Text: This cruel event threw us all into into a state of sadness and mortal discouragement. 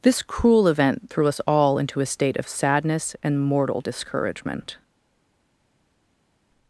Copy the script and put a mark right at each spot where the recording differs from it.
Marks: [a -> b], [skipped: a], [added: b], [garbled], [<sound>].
This cruel event threw us all into [skipped: into] a state of sadness and mortal discouragement.